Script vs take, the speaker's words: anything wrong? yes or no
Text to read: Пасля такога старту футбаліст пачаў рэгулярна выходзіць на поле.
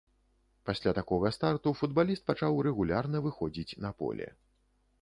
no